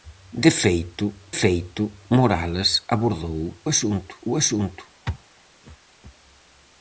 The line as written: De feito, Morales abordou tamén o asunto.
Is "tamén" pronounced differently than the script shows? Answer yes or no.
yes